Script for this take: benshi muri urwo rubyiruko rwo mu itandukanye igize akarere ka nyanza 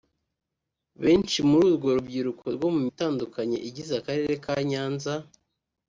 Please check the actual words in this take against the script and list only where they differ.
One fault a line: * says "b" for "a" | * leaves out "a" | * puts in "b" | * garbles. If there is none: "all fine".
all fine